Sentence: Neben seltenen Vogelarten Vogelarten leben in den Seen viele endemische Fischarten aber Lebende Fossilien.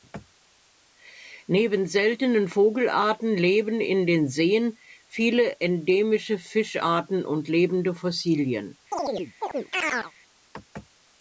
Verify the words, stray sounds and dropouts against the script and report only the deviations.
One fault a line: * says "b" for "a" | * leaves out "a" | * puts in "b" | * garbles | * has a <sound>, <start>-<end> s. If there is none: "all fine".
* leaves out "Vogelarten"
* says "und" for "aber"
* has a chirp, 8.9-10.1 s